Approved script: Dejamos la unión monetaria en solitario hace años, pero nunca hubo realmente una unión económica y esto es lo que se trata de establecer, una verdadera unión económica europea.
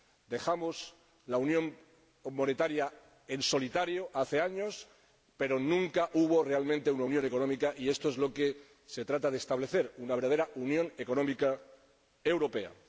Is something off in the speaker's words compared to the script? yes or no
no